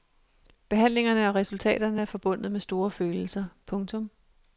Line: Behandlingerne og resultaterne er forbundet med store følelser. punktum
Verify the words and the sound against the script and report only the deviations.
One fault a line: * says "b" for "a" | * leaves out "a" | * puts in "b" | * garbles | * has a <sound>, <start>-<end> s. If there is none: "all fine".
all fine